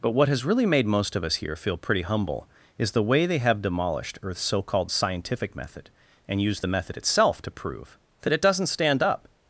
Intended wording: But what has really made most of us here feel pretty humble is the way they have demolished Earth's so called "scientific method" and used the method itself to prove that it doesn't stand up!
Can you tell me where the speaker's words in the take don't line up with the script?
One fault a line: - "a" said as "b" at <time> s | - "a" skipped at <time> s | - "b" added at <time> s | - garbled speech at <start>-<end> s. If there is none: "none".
none